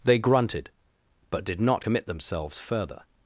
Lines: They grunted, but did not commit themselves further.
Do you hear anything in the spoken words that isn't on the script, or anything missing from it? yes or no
no